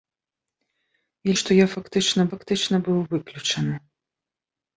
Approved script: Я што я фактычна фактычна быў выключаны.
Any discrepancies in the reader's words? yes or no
no